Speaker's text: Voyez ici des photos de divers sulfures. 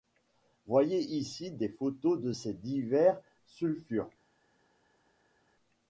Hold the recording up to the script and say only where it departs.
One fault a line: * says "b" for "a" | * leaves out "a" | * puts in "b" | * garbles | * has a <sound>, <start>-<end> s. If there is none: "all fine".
* puts in "ces"